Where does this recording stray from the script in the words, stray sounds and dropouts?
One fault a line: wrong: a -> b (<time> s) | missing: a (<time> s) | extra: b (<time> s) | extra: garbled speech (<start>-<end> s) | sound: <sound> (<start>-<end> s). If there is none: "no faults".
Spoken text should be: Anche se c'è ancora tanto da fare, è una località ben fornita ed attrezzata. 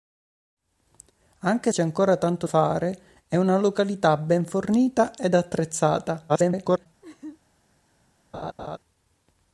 missing: se (1.7 s)
missing: da (2.5 s)
extra: garbled speech (6.3-6.9 s)
sound: laugh (7.0-7.4 s)
sound: laugh (8.3-8.8 s)